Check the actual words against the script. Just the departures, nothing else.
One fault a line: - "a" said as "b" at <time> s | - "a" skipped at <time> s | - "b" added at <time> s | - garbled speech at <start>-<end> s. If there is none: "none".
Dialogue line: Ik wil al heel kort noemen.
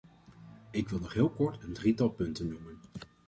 - "al" said as "nog" at 1.0 s
- "een drietal punten" added at 1.6 s